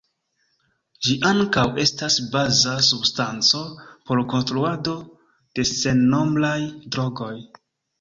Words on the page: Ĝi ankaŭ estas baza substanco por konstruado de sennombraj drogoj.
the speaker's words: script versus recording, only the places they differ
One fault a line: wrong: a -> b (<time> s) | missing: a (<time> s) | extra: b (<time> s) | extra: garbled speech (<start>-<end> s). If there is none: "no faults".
no faults